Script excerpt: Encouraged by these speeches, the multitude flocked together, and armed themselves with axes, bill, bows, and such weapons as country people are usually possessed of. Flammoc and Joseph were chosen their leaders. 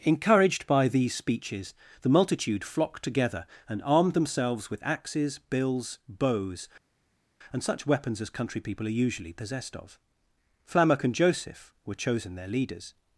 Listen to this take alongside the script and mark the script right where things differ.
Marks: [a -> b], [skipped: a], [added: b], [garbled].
Encouraged by these speeches, the multitude flocked together, and armed themselves with axes, [bill, -> bills] bows, and such weapons as country people are usually possessed of. Flammoc and Joseph were chosen their leaders.